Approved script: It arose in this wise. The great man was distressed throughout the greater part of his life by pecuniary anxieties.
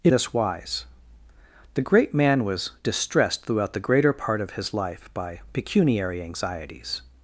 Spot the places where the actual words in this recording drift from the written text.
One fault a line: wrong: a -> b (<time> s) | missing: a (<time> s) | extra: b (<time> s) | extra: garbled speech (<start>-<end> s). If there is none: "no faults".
missing: arose in (0.1 s)